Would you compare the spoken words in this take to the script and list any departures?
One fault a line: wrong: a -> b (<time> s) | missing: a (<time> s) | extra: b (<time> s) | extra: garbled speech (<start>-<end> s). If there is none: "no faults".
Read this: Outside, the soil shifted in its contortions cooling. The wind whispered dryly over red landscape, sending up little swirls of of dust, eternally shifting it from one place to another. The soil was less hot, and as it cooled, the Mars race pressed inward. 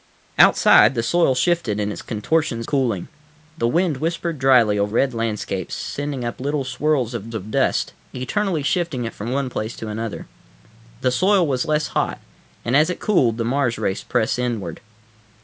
no faults